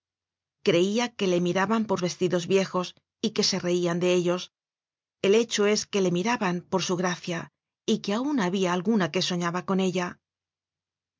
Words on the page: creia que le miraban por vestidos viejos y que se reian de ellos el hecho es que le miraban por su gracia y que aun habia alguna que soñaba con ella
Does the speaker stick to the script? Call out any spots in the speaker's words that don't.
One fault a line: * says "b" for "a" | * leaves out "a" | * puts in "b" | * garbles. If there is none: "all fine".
all fine